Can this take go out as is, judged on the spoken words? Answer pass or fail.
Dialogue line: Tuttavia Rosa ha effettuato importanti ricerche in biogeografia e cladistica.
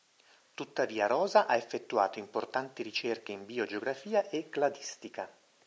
pass